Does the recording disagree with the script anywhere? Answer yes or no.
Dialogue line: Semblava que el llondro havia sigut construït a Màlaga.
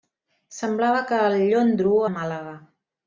yes